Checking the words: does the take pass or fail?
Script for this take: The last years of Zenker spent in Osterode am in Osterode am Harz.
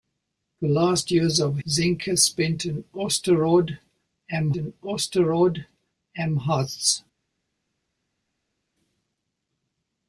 pass